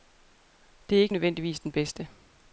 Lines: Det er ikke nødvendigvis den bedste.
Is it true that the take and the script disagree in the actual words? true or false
false